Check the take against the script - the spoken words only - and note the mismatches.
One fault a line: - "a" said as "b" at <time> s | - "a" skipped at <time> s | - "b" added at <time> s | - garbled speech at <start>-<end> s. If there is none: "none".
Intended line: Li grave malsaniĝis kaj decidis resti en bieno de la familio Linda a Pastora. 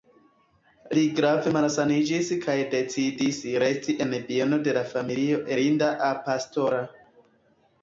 none